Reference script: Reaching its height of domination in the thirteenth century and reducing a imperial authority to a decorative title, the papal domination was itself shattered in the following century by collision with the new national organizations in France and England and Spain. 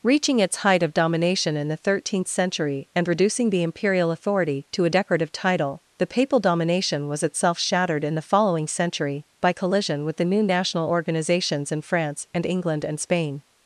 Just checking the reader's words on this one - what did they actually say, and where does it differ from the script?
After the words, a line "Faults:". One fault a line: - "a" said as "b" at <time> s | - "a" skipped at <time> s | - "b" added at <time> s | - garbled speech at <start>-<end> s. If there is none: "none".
Reaching its height of domination in the thirteenth century and reducing the imperial authority to a decorative title, the papal domination was itself shattered in the following century by collision with the new national organizations in France and England and Spain.
Faults:
- "a" said as "the" at 3.5 s